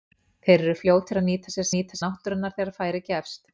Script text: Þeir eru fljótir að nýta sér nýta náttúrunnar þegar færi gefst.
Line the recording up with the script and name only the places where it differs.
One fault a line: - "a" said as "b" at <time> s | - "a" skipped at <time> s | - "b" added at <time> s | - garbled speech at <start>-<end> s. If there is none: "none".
none